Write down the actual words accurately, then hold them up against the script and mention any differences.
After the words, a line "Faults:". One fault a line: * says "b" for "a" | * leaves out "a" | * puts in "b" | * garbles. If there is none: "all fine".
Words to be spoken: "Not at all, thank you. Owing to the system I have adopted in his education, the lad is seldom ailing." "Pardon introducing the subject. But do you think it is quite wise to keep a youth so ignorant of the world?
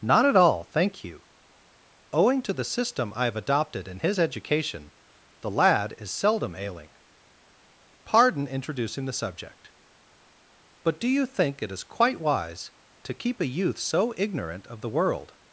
"Not at all, thank you. Owing to the system I have adopted in his education, the lad is seldom ailing." "Pardon introducing the subject. But do you think it is quite wise to keep a youth so ignorant of the world?
Faults:
all fine